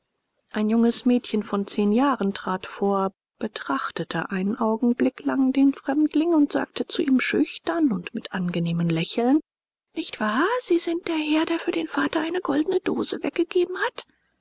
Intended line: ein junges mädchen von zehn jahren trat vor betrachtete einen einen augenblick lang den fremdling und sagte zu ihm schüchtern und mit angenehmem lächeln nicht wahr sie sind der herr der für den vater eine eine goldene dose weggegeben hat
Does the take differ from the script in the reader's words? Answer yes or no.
yes